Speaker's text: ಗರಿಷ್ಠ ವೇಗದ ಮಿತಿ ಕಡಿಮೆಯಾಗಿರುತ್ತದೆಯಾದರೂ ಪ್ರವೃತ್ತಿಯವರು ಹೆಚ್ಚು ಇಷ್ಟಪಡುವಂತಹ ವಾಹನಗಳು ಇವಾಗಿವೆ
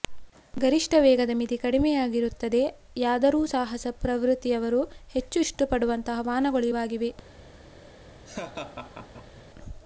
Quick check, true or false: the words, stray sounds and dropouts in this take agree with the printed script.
false